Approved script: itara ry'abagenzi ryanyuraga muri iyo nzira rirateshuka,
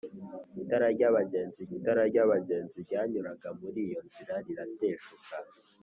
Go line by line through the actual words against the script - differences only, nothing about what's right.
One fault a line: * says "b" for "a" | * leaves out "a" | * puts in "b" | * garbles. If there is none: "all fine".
* puts in "itara ry'abagenzi"